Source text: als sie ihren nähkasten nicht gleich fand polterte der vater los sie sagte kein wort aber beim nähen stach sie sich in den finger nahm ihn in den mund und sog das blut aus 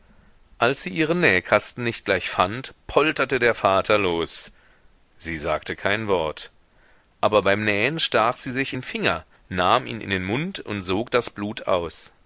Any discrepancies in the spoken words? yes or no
no